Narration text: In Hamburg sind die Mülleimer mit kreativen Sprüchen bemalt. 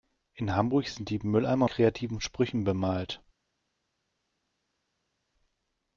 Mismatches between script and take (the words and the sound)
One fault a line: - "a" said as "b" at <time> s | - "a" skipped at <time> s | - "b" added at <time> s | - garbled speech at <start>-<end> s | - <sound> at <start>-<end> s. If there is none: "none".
- "mit" skipped at 1.7 s